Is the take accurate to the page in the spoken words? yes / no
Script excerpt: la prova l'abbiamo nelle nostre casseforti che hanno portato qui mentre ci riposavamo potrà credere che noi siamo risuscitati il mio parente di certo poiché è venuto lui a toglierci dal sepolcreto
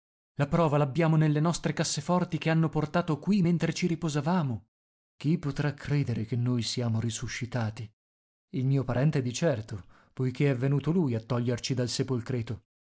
no